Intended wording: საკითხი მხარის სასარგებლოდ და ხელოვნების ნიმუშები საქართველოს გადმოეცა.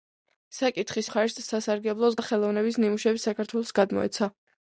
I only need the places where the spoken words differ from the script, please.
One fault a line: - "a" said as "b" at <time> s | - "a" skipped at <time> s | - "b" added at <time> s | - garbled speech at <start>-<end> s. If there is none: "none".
none